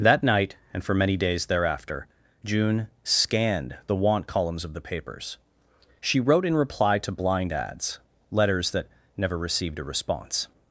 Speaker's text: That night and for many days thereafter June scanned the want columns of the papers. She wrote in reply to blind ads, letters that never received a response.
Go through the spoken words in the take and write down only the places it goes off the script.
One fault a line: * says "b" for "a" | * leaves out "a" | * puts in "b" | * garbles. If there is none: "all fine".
all fine